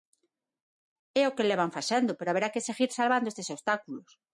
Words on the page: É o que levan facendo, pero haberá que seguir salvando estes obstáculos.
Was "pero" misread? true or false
false